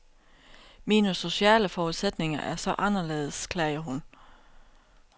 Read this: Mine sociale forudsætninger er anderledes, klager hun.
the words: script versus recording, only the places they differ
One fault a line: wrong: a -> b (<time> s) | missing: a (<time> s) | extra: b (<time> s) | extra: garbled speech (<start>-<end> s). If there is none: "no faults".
extra: så (2.5 s)